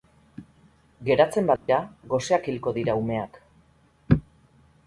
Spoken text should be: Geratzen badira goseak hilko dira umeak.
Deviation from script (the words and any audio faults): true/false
true